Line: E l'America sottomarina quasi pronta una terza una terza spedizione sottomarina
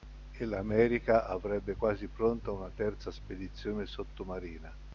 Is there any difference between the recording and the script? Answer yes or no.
yes